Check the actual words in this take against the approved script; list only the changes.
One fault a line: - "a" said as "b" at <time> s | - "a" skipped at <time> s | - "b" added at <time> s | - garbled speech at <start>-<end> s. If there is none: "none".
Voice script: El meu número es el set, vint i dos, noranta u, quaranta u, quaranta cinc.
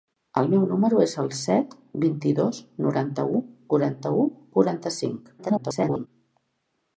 - garbled speech at 5.4-6.1 s